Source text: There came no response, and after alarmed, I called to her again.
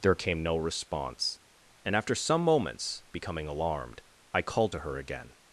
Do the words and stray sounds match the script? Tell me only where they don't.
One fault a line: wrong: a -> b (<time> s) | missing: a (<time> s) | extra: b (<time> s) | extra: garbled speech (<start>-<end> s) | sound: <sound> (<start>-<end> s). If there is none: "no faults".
extra: some moments becoming (2.1 s)